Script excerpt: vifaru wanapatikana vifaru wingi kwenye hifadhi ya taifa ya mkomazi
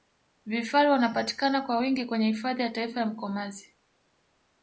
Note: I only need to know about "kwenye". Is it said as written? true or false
true